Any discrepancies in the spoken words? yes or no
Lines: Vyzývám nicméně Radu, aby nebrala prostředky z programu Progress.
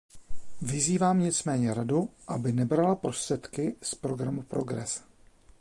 no